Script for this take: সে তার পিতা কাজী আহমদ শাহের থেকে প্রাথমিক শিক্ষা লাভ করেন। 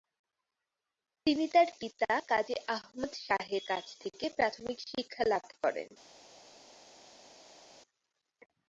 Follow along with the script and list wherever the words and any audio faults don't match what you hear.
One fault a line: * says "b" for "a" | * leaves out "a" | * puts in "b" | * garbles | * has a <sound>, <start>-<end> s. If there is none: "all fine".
* says "তিনি" for "সে"
* puts in "কাছ"